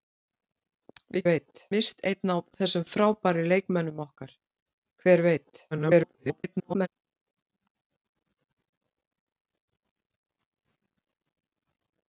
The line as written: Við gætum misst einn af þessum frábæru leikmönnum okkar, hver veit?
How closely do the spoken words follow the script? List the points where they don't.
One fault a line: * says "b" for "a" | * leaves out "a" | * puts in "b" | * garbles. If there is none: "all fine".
* says "veit" for "gætum"
* garbles